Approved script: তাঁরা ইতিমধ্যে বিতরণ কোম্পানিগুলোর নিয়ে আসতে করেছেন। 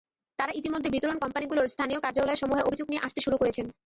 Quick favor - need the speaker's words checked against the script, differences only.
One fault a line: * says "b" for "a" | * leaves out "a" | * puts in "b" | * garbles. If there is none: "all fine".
* puts in "স্থানীয় কার্যালয়সমূহে অভিযোগ"
* puts in "শুরু"